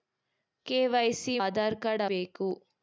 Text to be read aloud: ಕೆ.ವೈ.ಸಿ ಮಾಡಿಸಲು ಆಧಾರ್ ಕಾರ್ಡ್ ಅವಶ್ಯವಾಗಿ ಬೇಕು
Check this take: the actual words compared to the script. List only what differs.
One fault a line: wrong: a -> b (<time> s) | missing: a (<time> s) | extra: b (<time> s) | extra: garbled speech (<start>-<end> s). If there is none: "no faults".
missing: ಮಾಡಿಸಲು (1.4 s)
missing: ಅವಶ್ಯವಾಗಿ (2.1 s)